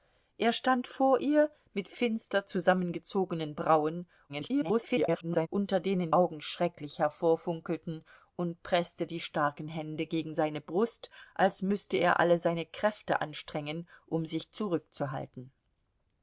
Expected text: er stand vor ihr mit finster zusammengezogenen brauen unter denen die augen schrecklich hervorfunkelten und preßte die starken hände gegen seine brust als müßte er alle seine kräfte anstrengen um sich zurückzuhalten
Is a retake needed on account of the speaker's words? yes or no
yes